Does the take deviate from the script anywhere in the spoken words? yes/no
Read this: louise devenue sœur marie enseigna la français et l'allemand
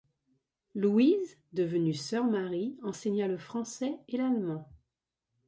yes